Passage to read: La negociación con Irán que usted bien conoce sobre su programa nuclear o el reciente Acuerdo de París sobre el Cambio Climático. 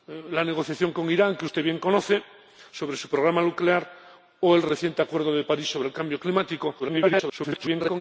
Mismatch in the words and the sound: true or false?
true